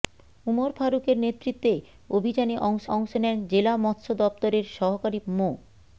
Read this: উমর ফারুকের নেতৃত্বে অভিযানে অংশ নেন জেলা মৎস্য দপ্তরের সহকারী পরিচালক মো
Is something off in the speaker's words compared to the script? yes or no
yes